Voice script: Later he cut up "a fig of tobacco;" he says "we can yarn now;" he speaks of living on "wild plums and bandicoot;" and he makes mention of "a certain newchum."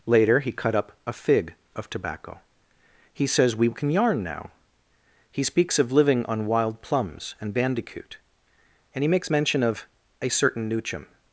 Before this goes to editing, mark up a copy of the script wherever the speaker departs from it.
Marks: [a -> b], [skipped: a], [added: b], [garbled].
Later he cut up "a fig of tobacco;" he says "we can yarn now;" he speaks of living on "wild plums and bandicoot;" and he makes mention of "a certain newchum."